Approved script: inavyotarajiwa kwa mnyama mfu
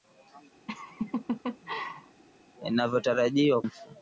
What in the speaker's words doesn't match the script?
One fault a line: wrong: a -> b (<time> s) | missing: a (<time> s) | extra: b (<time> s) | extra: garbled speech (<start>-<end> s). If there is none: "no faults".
missing: kwa mnyama (3.6 s)